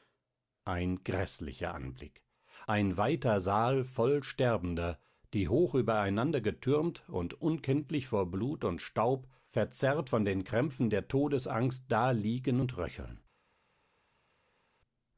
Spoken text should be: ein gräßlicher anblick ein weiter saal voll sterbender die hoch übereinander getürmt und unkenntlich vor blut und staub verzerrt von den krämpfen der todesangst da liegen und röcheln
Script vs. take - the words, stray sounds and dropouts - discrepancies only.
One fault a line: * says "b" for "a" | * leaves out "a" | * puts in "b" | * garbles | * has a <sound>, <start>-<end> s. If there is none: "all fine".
all fine